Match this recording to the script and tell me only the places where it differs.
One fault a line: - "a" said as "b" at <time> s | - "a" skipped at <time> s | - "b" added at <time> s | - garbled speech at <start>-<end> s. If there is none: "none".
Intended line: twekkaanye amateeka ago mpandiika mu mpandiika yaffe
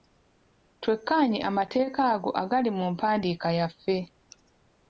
- "mpandiika" said as "agali" at 2.4 s